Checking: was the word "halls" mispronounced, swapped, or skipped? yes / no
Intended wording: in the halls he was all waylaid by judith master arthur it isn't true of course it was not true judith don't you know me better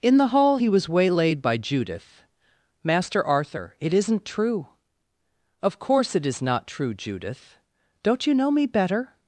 yes